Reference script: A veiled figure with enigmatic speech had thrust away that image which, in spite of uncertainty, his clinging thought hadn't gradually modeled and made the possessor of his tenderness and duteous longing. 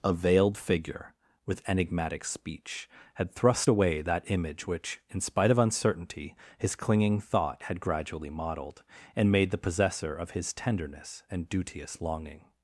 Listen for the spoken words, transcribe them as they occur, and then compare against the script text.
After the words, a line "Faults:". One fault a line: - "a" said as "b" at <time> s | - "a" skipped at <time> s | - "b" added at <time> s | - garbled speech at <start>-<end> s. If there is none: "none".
A veiled figure with enigmatic speech had thrust away that image which, in spite of uncertainty, his clinging thought had gradually modeled and made the possessor of his tenderness and duteous longing.
Faults:
- "hadn't" said as "had" at 7.6 s